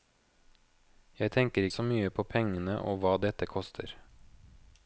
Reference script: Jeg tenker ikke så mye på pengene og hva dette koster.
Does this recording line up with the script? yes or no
no